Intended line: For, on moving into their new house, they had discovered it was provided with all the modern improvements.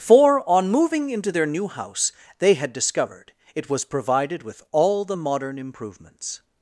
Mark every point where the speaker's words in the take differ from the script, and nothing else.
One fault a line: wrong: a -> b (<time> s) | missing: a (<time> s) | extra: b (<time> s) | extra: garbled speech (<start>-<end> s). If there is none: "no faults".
no faults